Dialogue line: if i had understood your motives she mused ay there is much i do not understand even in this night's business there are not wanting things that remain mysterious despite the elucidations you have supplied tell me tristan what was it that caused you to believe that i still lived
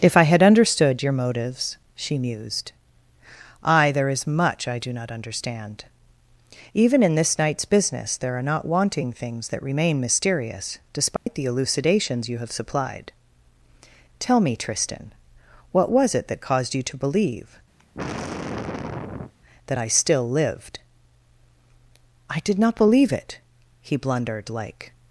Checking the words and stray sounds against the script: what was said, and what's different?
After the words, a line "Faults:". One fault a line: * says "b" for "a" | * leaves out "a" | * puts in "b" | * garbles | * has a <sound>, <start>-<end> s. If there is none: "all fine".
if i had understood your motives she mused ay there is much i do not understand even in this night's business there are not wanting things that remain mysterious despite the elucidations you have supplied tell me tristan what was it that caused you to believe that i still lived i did not believe it he blundered like
Faults:
* has a dropout, 11.2-11.3 s
* has a sigh, 17.8-19.3 s
* puts in "i did not believe it he blundered like"